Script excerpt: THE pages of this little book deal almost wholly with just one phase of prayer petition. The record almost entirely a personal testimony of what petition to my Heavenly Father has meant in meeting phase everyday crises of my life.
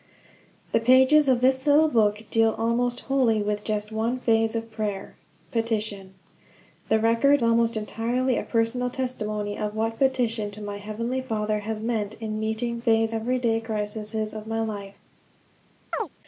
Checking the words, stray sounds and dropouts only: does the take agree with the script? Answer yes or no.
no